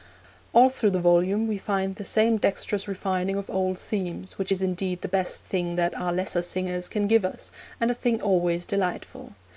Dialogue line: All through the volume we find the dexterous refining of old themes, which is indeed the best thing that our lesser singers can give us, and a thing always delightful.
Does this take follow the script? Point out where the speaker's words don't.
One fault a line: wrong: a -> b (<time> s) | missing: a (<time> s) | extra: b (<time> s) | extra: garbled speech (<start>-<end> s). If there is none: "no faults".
extra: same (2.0 s)